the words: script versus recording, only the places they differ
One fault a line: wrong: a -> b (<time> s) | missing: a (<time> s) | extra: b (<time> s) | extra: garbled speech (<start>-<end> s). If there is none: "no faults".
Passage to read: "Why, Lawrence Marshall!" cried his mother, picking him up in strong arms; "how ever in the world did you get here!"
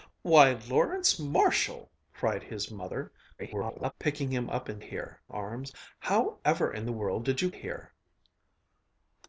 extra: garbled speech (3.4-3.9 s)
wrong: strong -> here (4.8 s)
missing: get (7.5 s)